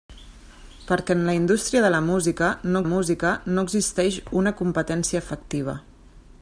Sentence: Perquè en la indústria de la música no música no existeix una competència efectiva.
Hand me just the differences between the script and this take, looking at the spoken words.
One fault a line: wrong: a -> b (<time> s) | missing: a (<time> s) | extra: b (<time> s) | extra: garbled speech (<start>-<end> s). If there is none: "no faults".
no faults